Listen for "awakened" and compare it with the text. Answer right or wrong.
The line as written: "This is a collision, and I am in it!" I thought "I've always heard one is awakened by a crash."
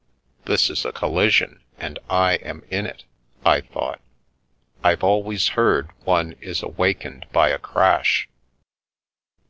right